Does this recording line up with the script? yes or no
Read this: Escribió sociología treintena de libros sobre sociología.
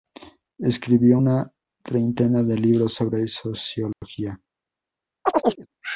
no